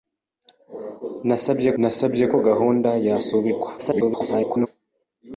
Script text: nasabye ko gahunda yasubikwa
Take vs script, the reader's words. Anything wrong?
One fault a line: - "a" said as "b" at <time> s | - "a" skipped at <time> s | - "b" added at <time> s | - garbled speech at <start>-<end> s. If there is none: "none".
- "nasabye" added at 1.8 s
- garbled speech at 3.8-4.7 s